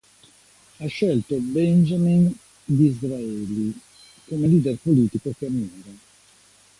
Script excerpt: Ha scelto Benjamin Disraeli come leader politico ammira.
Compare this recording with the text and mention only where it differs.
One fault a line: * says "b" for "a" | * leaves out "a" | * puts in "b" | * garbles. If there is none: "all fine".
* puts in "che"